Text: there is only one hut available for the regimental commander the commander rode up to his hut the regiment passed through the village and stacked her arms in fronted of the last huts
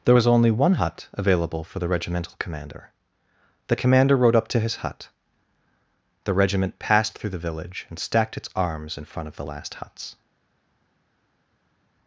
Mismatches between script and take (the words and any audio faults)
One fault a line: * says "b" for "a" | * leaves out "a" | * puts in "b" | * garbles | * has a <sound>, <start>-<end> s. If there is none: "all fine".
* says "was" for "is"
* says "its" for "her"
* says "front" for "fronted"